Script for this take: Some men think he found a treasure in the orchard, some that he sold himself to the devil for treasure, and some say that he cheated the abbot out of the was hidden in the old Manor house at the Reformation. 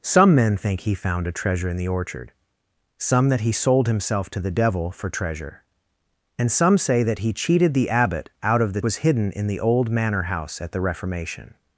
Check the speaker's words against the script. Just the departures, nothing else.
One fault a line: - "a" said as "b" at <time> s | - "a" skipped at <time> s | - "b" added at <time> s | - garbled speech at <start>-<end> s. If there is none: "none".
none